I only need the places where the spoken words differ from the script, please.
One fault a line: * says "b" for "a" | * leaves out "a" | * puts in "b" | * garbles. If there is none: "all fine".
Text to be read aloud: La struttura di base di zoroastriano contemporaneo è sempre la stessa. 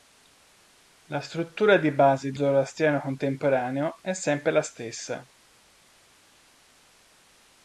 all fine